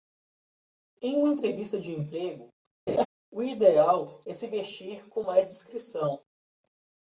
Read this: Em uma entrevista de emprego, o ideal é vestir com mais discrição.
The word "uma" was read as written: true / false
true